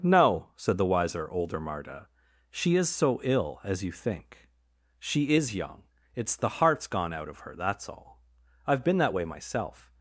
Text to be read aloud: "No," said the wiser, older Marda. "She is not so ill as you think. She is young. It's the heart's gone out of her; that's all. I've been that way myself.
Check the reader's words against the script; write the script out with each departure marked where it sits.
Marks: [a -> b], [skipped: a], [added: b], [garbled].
"No," said the wiser, older Marda. "She is [skipped: not] so ill as you think. She is young. It's the heart's gone out of her; that's all. I've been that way myself.